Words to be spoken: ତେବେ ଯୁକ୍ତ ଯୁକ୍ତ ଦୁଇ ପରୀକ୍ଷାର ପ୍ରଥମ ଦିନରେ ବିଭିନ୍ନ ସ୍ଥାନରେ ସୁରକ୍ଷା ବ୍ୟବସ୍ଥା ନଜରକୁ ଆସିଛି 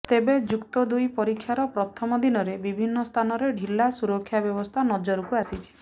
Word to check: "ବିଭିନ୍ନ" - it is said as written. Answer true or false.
true